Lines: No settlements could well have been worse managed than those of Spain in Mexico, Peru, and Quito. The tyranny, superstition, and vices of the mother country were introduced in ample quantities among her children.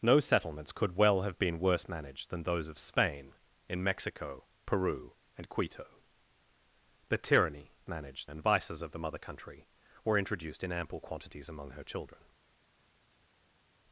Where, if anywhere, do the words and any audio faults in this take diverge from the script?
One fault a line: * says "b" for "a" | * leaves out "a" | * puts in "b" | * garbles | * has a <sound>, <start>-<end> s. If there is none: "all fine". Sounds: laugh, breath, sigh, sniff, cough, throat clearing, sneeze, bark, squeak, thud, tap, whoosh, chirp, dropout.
* says "managed" for "superstition"